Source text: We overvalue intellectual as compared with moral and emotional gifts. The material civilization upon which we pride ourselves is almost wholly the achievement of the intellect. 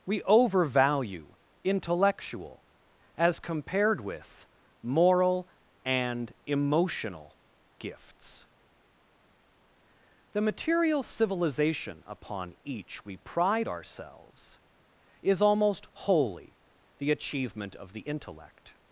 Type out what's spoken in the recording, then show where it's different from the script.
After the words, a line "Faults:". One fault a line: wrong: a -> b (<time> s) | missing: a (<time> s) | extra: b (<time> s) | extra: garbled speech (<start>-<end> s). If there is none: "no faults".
We overvalue intellectual as compared with moral and emotional gifts. The material civilization upon each we pride ourselves is almost wholly the achievement of the intellect.
Faults:
wrong: which -> each (12.6 s)